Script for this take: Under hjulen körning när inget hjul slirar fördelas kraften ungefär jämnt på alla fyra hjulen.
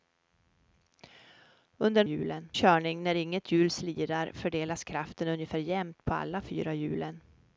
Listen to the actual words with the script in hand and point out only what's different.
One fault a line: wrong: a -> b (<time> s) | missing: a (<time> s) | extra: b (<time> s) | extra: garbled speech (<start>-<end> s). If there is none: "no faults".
no faults